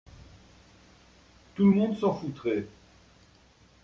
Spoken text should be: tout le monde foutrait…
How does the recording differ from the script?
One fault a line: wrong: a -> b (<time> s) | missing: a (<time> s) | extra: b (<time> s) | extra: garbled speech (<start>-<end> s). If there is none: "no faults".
extra: s'en (2.0 s)